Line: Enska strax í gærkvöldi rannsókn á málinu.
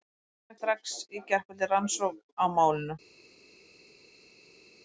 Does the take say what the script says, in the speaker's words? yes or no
yes